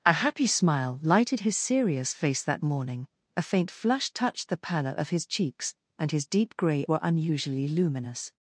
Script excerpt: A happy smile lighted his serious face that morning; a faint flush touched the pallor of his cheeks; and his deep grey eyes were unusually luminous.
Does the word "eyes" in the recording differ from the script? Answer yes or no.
yes